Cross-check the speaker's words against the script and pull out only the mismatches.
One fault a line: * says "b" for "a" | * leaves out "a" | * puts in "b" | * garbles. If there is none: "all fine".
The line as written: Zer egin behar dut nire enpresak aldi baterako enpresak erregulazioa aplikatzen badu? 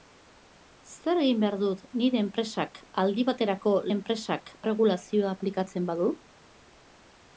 all fine